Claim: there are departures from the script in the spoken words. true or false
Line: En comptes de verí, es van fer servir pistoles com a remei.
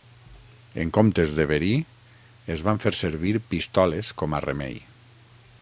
false